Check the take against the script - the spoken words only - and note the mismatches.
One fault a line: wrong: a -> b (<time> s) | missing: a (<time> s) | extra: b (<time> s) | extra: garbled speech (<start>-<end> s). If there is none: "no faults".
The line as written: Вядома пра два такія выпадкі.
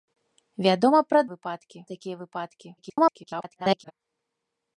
wrong: два -> выпадкі (1.3 s)
extra: garbled speech (2.8-3.9 s)